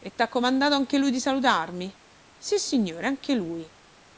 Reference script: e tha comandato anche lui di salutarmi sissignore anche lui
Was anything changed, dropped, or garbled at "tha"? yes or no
no